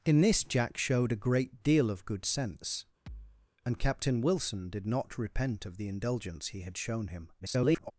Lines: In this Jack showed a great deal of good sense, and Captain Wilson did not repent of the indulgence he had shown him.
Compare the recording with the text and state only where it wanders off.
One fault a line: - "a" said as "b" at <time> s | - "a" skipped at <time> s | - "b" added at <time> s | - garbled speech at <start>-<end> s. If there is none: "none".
- garbled speech at 7.4-7.9 s